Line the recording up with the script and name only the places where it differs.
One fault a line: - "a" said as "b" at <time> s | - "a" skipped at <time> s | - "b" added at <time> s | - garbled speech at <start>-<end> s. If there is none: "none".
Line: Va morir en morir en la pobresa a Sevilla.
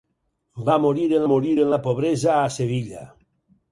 none